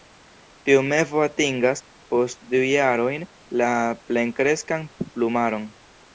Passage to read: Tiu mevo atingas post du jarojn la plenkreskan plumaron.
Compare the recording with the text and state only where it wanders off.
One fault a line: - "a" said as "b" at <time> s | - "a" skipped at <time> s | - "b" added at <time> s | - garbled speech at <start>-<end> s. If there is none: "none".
none